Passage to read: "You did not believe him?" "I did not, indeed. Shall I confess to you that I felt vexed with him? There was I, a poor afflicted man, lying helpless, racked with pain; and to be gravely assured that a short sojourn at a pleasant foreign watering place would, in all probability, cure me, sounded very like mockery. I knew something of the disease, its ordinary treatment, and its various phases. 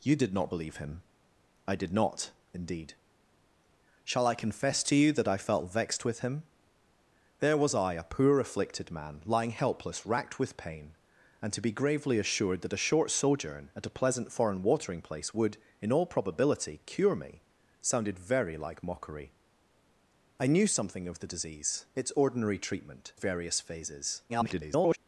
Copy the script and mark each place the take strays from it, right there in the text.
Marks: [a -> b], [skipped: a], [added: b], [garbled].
"You did not believe him?" "I did not, indeed. Shall I confess to you that I felt vexed with him? There was I, a poor afflicted man, lying helpless, racked with pain; and to be gravely assured that a short sojourn at a pleasant foreign watering place would, in all probability, cure me, sounded very like mockery. I knew something of the disease, its ordinary treatment, [skipped: and its] various phases. [garbled]